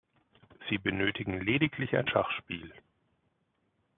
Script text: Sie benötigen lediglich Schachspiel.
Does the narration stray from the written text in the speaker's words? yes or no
yes